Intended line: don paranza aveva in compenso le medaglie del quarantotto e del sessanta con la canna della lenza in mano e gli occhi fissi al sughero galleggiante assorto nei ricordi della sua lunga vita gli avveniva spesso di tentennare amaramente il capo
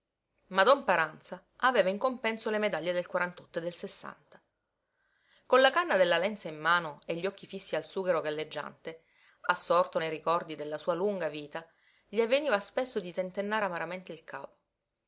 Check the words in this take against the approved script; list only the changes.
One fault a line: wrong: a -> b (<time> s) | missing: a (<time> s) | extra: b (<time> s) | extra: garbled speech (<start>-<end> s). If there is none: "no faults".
no faults